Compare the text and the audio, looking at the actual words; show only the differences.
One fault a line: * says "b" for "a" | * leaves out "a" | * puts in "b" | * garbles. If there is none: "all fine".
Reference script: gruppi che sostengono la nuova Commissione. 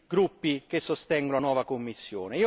all fine